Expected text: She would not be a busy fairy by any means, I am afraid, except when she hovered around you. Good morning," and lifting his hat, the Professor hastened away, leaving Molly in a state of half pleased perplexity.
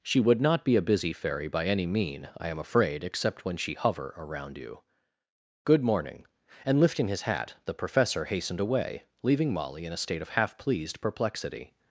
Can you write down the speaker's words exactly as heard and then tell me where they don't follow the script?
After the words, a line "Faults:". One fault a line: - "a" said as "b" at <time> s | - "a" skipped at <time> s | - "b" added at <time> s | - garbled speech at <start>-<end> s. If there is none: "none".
She would not be a busy fairy by any mean, I am afraid, except when she hover around you. Good morning," and lifting his hat, the Professor hastened away, leaving Molly in a state of half pleased perplexity.
Faults:
- "means" said as "mean" at 1.9 s
- "hovered" said as "hover" at 3.7 s